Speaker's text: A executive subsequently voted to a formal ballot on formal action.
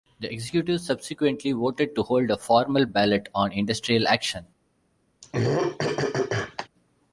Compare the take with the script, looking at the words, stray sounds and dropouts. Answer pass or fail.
fail